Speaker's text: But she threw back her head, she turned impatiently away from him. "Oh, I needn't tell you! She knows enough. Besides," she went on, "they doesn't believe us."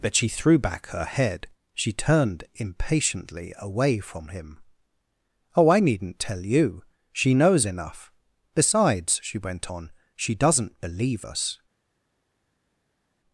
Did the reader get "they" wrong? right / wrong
wrong